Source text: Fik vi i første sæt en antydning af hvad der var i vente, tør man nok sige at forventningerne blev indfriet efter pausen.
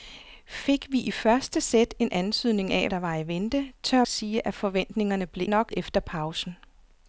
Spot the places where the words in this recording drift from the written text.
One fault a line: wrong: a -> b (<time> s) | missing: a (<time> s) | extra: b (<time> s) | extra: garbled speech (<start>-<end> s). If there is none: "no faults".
missing: hvad (2.9 s)
missing: man nok (4.0 s)
wrong: indfriet -> nok (5.4 s)